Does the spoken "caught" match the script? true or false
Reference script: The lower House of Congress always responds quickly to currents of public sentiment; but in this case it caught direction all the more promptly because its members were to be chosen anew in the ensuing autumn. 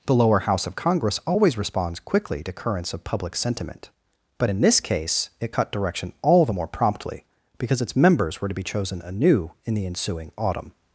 false